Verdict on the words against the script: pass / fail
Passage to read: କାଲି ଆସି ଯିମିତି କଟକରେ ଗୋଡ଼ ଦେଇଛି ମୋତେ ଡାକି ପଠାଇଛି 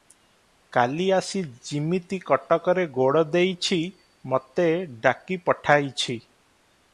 pass